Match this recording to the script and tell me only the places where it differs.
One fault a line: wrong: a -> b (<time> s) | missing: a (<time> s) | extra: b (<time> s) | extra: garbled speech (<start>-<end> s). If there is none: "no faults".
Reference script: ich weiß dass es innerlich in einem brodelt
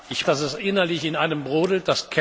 missing: weiß (0.2 s)